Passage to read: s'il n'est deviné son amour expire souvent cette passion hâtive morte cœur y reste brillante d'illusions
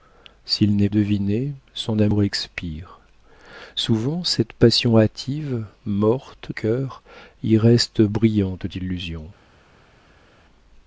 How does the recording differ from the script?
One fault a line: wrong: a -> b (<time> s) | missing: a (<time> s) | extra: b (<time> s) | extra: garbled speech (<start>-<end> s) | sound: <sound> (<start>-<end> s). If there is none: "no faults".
no faults